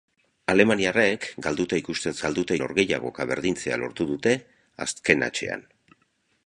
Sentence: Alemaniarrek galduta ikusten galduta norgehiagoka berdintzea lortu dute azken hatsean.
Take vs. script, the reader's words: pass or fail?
pass